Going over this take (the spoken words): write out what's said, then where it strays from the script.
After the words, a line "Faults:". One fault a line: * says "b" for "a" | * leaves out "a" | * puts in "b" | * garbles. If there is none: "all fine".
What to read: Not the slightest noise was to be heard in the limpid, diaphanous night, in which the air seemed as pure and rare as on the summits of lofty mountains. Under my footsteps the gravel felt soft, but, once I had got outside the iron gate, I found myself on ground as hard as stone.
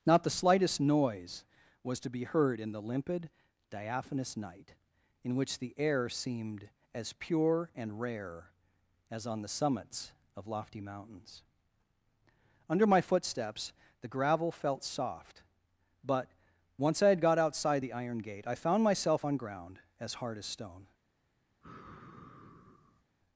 Not the slightest noise was to be heard in the limpid, diaphanous night, in which the air seemed as pure and rare as on the summits of lofty mountains. Under my footsteps the gravel felt soft, but, once I had got outside the iron gate, I found myself on ground as hard as stone.
Faults:
all fine